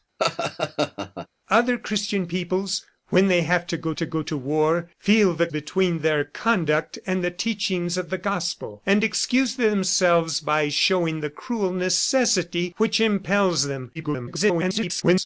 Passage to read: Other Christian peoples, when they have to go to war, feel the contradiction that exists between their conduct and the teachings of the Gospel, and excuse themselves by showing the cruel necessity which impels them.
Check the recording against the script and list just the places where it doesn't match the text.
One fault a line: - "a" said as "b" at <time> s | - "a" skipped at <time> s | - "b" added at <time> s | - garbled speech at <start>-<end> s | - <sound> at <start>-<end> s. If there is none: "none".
- laugh at 0.2-1.3 s
- "go to" added at 4.1 s
- "contradiction that exists" skipped at 5.5 s
- garbled speech at 13.9-15.3 s